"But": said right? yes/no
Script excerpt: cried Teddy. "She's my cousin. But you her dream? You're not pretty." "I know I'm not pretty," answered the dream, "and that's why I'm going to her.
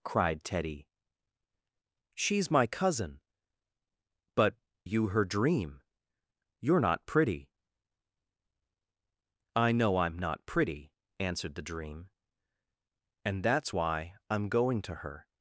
yes